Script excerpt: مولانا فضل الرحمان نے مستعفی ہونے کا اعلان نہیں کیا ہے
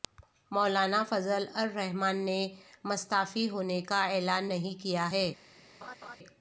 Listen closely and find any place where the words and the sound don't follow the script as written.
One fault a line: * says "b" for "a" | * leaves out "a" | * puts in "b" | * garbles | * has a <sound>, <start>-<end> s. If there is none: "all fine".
* has a laugh, 5.8-6.2 s